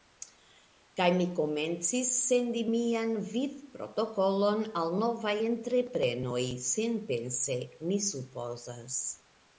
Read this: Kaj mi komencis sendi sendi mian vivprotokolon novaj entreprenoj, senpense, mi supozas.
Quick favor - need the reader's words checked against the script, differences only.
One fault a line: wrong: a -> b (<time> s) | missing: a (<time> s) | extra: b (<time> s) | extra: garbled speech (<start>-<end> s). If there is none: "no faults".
missing: sendi (2.6 s)
extra: al (4.8 s)